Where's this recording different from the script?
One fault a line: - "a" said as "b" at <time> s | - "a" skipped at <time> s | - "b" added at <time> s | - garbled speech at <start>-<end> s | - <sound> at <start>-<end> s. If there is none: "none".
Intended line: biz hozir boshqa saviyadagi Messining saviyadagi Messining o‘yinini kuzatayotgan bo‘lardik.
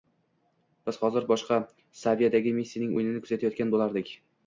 - "saviyadagi Messining" skipped at 3.0 s